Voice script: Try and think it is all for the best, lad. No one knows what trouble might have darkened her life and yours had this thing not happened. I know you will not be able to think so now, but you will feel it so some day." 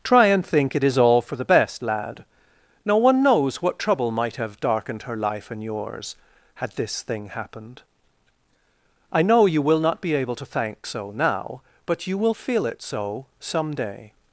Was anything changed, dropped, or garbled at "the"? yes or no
no